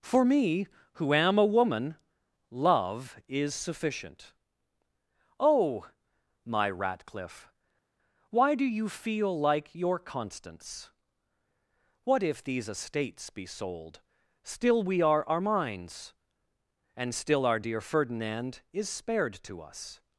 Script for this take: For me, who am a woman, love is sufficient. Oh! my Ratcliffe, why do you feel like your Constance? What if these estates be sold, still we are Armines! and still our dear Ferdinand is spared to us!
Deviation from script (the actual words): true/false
false